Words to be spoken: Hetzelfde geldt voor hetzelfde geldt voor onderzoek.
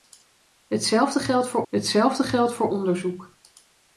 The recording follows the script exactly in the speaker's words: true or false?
true